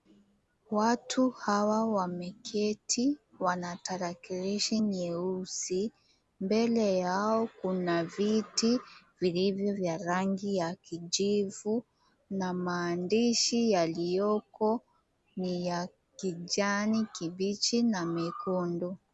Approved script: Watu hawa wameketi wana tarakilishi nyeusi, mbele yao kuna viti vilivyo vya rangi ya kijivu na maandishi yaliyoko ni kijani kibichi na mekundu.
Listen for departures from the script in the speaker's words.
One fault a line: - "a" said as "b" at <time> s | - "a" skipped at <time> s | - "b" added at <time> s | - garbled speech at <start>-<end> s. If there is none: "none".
- "ya" added at 15.7 s